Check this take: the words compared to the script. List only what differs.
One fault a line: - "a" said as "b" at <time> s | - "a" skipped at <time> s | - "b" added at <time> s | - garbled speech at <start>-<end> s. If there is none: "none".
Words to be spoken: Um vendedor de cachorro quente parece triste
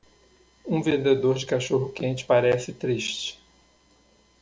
none